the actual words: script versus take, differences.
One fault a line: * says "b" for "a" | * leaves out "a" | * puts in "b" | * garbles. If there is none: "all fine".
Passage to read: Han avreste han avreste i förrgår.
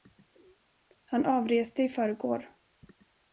* leaves out "han avreste"